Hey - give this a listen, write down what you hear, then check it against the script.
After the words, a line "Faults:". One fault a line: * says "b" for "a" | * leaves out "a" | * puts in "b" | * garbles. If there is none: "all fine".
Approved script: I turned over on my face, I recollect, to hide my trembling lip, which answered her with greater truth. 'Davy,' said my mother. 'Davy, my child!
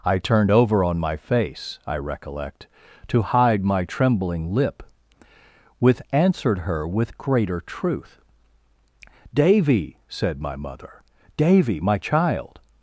I turned over on my face, I recollect, to hide my trembling lip, with answered her with greater truth. 'Davy,' said my mother. 'Davy, my child!
Faults:
* says "with" for "which"